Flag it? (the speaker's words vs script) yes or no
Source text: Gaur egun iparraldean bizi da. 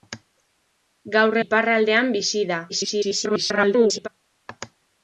yes